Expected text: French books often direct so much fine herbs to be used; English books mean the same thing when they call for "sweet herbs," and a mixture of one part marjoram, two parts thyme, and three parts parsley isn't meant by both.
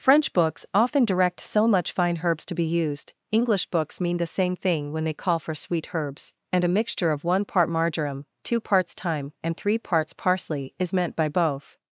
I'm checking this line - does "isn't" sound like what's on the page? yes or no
no